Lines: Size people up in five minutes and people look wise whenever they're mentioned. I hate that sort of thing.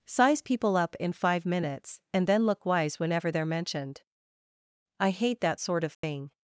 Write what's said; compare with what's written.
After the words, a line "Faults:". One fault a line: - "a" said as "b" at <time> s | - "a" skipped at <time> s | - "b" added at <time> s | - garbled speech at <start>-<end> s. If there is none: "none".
Size people up in five minutes and then look wise whenever they're mentioned. I hate that sort of thing.
Faults:
- "people" said as "then" at 2.3 s